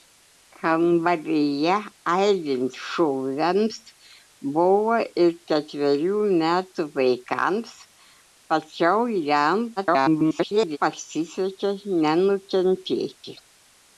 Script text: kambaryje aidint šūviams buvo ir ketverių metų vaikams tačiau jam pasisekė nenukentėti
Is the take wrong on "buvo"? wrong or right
right